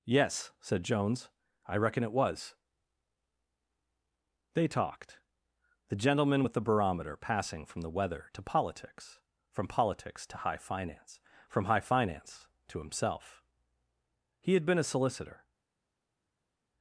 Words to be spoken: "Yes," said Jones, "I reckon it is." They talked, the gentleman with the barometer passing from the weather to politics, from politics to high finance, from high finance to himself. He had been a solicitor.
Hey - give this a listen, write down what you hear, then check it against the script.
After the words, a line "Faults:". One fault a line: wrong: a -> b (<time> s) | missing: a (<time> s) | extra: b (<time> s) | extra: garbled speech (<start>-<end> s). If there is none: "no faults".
"Yes," said Jones, "I reckon it was." They talked, the gentleman with the barometer passing from the weather to politics, from politics to high finance, from high finance to himself. He had been a solicitor.
Faults:
wrong: is -> was (2.1 s)